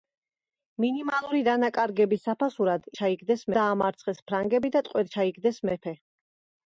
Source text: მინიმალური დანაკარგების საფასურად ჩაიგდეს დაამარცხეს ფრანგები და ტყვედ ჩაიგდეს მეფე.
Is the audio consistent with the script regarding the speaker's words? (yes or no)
yes